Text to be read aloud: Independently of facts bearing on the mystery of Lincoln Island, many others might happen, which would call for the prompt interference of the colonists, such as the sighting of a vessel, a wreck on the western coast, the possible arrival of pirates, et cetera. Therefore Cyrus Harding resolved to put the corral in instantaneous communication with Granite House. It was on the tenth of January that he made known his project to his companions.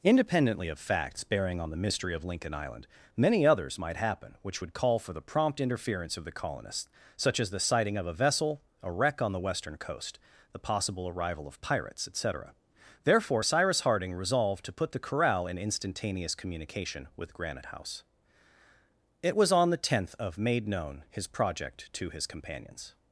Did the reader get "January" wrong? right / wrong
wrong